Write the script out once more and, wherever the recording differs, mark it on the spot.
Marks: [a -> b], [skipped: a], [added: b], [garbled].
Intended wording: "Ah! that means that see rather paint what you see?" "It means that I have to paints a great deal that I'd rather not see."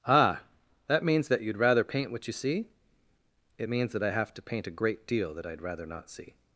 "Ah! that means that [see -> you'd] rather paint what you see?" "It means that I have to [paints -> paint] a great deal that I'd rather not see."